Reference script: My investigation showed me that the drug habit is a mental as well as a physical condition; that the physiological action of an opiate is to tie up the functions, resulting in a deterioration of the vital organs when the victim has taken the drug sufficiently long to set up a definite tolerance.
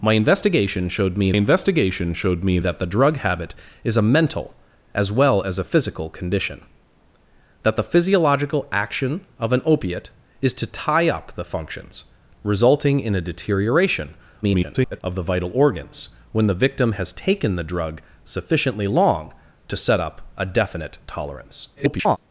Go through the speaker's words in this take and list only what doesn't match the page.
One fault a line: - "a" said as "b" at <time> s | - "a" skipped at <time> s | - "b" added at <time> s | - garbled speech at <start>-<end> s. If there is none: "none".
- "investigation showed me" added at 1.3 s
- garbled speech at 14.4-15.0 s
- garbled speech at 21.8-22.2 s